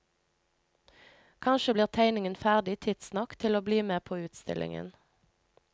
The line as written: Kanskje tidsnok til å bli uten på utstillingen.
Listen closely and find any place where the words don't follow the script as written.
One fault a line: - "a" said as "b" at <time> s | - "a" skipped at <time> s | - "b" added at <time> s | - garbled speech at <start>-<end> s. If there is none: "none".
- "blir tegningen ferdig" added at 1.7 s
- "uten" said as "med" at 3.9 s